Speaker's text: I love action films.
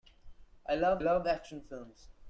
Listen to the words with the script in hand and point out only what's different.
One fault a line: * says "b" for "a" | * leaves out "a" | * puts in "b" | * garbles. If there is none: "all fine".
* puts in "love"